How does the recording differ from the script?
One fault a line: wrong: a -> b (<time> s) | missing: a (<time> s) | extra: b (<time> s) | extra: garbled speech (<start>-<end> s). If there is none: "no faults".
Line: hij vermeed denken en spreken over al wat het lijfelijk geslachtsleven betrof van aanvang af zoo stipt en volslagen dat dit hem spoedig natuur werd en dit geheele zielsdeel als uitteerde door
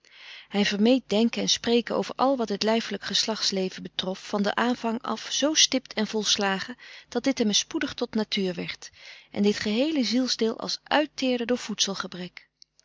extra: den (4.4 s)
extra: tot (7.9 s)